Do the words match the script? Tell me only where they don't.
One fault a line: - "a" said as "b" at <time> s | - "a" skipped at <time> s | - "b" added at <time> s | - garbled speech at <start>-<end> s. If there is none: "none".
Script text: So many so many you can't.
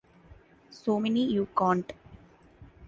- "so many" skipped at 1.2 s